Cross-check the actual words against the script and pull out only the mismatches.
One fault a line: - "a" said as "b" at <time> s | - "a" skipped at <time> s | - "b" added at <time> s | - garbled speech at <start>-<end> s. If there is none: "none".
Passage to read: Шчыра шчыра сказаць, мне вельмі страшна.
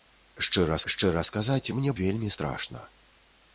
none